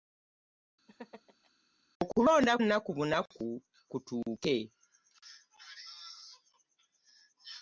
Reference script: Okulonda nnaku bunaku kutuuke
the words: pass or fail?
pass